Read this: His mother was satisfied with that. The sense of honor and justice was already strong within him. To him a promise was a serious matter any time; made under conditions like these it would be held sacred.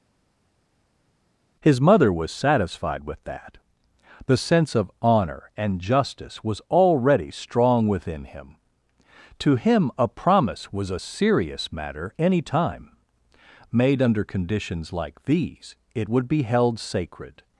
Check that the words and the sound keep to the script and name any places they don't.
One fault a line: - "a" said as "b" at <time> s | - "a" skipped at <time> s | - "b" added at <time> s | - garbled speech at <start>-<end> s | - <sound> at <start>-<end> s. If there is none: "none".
none